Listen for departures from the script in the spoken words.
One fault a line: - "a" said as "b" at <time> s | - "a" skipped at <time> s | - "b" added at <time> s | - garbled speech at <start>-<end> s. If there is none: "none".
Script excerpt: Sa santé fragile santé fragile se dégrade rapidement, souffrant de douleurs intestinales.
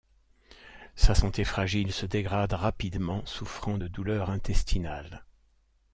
- "santé fragile" skipped at 1.9 s